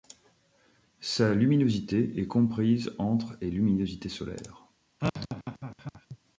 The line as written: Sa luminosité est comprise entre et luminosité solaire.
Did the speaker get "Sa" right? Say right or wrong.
right